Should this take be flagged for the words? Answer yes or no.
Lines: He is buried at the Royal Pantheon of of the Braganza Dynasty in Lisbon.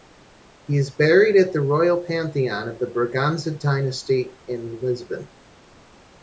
yes